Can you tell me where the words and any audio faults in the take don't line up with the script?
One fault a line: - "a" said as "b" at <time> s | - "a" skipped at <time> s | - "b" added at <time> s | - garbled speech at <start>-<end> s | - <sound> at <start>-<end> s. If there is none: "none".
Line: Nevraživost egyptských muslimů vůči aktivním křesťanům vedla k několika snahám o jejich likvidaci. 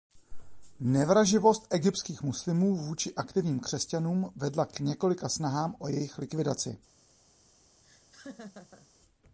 - laugh at 7.8-8.9 s